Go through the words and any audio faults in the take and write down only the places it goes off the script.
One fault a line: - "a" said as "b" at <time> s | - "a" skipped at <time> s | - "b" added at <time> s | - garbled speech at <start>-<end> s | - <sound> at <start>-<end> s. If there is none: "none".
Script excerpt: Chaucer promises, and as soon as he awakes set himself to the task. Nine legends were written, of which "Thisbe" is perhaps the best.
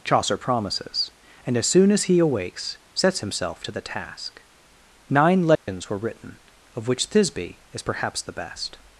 - "set" said as "sets" at 2.9 s
- dropout at 5.6-5.7 s